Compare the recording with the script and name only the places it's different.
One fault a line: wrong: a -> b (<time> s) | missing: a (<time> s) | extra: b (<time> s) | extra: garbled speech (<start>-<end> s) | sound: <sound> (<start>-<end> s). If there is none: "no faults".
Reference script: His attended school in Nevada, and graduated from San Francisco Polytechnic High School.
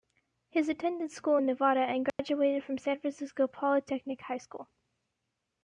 sound: dropout (2.1-2.2 s)